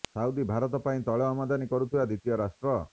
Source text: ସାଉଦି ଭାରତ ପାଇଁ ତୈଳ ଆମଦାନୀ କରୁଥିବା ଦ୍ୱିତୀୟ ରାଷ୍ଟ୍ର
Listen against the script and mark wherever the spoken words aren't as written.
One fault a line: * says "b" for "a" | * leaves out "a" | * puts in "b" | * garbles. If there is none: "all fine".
all fine